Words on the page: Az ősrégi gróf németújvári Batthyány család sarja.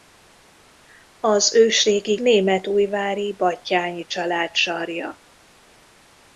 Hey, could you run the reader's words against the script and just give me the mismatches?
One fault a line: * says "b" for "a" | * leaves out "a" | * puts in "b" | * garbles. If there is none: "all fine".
* leaves out "gróf"